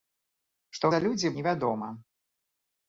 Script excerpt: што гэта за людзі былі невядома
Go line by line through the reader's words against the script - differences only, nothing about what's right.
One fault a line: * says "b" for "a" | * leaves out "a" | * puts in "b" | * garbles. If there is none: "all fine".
* leaves out "гэта"
* leaves out "былі"